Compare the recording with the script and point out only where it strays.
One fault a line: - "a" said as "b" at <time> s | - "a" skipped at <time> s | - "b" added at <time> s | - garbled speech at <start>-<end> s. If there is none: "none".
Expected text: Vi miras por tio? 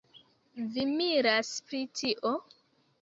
- "por" said as "pri" at 1.7 s